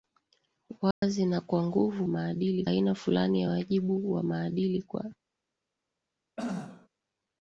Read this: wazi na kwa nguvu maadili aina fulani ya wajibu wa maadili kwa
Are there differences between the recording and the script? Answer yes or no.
no